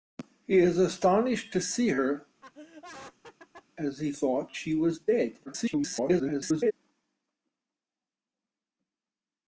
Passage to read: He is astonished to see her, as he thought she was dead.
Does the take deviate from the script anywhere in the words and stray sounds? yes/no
yes